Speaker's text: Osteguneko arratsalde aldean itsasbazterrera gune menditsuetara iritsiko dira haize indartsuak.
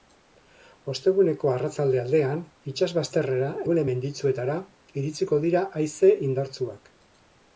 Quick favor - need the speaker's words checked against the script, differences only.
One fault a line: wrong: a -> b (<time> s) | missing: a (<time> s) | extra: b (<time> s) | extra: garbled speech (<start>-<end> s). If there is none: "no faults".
no faults